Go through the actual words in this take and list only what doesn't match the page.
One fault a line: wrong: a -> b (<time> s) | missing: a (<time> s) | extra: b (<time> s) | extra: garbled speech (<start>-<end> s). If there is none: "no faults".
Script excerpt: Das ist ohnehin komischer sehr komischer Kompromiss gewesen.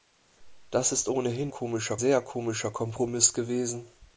no faults